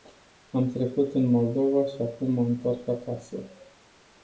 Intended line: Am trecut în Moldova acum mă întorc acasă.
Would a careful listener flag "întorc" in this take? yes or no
no